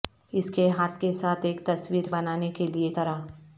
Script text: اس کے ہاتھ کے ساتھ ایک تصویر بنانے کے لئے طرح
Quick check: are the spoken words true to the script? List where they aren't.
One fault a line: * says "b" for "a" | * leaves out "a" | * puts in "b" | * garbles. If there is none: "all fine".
all fine